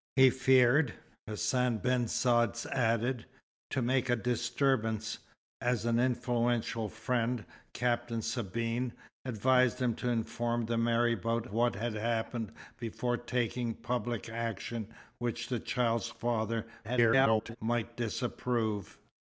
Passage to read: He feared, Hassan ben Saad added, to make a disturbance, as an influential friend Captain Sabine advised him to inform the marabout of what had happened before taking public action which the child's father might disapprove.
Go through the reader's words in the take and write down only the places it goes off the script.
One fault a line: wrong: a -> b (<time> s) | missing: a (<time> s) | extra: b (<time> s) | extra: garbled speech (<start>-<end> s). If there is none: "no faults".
missing: of (11.4 s)
extra: garbled speech (16.8-17.6 s)